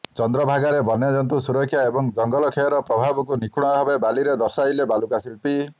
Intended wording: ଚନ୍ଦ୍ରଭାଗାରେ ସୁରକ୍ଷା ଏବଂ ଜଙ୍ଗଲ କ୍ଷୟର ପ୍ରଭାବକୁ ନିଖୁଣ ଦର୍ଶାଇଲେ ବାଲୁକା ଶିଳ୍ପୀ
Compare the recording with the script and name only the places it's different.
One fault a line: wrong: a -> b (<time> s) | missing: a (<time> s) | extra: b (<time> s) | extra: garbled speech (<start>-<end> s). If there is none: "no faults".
extra: ବନ୍ୟଜନ୍ତୁ (0.8 s)
extra: ଭାବେ ବାଲିରେ (3.7 s)